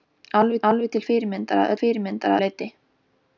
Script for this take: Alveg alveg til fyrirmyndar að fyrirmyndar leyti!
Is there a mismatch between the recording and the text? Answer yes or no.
no